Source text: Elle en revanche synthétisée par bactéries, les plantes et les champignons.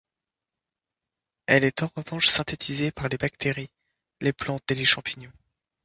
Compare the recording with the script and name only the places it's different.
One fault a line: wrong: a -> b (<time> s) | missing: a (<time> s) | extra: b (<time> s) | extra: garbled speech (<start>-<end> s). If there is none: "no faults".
extra: est (1.6 s)
extra: les (3.1 s)